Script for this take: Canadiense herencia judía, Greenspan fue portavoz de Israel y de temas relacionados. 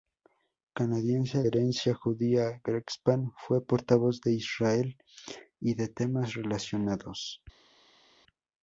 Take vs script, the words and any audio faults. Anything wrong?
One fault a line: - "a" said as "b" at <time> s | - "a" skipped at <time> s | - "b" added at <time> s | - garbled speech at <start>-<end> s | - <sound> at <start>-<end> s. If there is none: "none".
none